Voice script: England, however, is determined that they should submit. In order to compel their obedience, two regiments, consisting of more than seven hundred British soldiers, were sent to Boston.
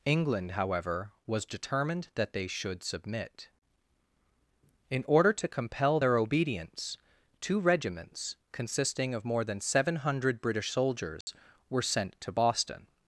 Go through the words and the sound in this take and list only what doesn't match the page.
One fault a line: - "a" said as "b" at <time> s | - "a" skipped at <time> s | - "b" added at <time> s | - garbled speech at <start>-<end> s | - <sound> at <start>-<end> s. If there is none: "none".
- "is" said as "was" at 1.3 s
- dropout at 11.2-11.3 s